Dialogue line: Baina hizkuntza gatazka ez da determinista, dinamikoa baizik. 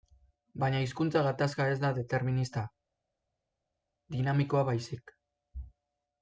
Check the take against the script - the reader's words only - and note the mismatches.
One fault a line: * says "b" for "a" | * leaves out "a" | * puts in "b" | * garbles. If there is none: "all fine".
all fine